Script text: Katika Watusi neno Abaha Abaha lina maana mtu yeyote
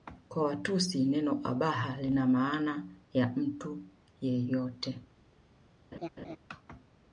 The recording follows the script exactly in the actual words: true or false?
false